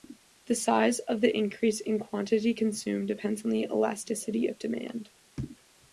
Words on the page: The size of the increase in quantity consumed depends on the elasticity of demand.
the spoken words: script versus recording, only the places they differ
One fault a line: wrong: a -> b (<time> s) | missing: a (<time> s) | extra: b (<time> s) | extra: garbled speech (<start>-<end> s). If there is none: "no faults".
no faults